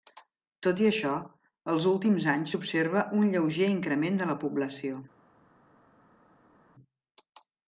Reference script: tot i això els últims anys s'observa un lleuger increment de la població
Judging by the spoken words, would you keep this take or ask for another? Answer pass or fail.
pass